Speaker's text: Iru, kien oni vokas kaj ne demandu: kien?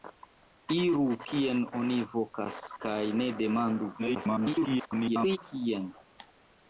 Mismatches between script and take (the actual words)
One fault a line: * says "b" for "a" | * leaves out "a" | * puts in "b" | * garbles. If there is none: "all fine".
* garbles